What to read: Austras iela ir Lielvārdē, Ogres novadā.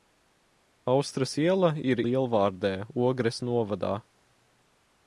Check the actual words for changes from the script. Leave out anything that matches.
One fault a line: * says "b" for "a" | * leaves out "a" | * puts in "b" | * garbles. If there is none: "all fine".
all fine